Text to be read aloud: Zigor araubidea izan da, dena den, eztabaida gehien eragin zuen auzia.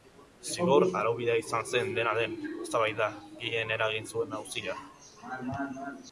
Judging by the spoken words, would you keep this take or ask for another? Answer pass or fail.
fail